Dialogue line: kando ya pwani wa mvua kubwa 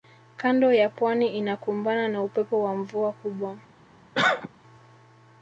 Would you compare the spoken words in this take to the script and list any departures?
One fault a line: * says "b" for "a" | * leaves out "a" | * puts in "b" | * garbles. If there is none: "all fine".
* puts in "inakumbana na upepo"